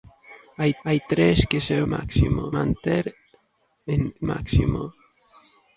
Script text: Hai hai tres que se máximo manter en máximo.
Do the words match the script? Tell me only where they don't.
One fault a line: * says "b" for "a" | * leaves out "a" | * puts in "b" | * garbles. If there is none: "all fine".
all fine